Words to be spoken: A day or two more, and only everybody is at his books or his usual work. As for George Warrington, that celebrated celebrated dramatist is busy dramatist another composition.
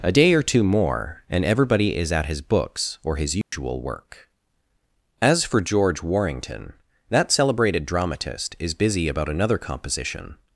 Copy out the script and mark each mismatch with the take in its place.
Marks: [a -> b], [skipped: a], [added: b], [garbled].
A day or two more, and [skipped: only] everybody is at his books or his usual work. As for George Warrington, that celebrated [skipped: celebrated] dramatist is busy [dramatist -> about] another composition.